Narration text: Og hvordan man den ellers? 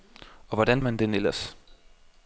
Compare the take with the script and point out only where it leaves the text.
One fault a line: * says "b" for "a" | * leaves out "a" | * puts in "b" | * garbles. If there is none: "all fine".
all fine